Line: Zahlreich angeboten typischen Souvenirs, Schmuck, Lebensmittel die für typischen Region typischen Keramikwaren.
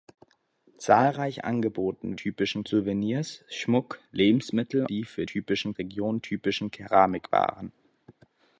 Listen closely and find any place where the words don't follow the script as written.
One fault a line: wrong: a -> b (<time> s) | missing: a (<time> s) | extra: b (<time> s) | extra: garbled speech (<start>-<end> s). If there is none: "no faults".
no faults